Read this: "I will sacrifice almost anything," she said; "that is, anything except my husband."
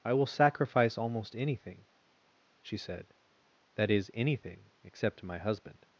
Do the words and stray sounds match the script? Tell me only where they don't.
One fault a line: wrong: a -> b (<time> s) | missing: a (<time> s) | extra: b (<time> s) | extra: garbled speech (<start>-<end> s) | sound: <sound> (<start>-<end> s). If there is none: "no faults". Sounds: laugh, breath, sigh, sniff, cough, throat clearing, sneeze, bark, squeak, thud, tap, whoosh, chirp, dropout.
no faults